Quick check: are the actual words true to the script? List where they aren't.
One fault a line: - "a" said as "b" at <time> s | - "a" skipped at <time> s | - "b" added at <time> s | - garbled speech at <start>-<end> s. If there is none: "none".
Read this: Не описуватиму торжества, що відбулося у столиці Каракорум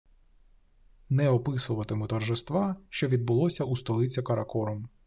none